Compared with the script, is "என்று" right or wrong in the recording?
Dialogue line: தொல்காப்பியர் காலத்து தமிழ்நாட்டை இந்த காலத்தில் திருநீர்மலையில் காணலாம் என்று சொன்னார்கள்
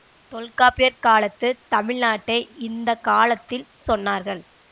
wrong